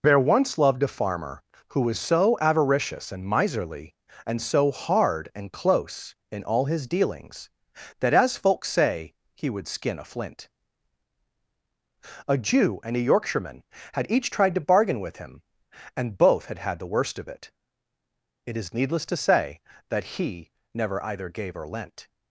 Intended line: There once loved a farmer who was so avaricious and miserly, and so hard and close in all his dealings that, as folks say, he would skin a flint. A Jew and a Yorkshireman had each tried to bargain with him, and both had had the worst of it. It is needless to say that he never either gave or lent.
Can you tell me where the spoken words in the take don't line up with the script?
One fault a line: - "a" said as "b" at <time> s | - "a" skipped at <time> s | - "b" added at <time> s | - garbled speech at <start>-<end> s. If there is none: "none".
none